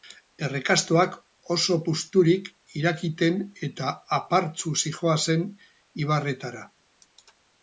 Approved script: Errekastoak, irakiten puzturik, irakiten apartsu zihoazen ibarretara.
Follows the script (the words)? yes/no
no